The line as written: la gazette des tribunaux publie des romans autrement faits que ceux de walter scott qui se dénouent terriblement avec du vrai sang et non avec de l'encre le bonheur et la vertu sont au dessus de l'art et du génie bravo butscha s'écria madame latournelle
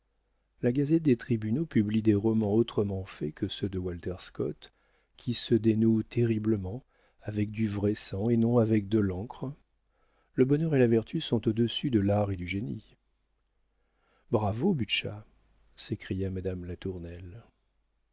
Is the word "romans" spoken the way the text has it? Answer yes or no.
yes